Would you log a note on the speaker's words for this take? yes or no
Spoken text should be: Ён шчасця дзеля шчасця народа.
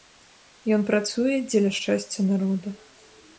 yes